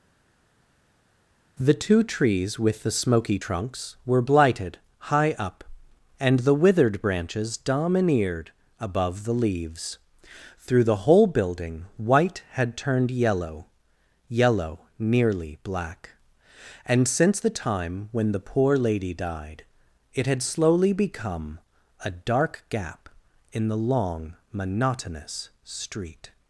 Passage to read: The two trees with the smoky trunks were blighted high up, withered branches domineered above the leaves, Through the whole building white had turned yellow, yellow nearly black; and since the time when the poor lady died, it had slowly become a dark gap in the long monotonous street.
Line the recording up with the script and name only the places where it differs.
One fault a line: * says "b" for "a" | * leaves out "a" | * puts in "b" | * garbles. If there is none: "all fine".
* puts in "and the"